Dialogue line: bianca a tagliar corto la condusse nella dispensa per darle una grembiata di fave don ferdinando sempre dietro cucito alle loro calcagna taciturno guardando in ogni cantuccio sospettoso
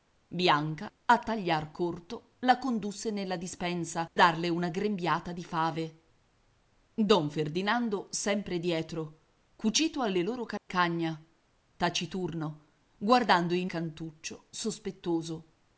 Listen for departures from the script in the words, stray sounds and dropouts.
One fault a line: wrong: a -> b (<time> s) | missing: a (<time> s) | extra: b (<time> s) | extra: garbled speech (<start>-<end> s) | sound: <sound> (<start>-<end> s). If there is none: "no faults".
missing: per (4.1 s)
sound: dropout (10.6-10.7 s)
missing: ogni (13.7 s)